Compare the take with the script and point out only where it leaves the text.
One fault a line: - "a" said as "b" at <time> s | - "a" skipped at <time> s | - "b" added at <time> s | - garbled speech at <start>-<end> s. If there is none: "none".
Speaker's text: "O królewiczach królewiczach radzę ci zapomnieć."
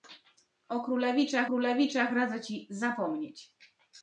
none